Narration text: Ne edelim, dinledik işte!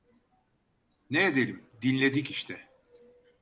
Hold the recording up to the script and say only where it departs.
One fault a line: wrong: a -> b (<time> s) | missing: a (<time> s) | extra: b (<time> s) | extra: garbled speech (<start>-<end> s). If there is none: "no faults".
no faults